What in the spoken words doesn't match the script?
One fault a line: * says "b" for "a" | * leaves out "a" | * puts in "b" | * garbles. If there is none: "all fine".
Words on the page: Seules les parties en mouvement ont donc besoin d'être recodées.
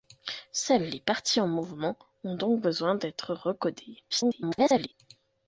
* garbles